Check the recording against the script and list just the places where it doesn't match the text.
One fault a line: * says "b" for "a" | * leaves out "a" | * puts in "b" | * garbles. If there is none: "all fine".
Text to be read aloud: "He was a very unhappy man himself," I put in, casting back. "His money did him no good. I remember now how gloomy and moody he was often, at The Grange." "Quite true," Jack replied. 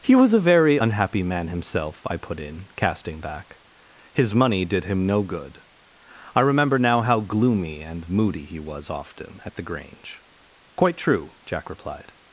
all fine